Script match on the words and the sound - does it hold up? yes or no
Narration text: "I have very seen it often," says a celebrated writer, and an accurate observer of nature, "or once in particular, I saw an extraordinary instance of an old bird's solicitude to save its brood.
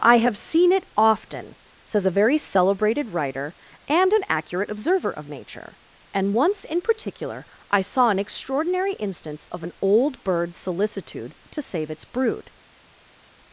no